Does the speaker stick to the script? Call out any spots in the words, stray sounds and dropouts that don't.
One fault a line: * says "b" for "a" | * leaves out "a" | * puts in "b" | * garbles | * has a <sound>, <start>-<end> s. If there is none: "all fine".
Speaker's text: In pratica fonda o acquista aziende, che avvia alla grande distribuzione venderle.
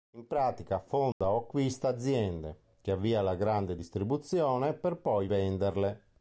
* has a dropout, 1.1-1.2 s
* puts in "per poi"